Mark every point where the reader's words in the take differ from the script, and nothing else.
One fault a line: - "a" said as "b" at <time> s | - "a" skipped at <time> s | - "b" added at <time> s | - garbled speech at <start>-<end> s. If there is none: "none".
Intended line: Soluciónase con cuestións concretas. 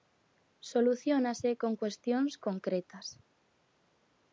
none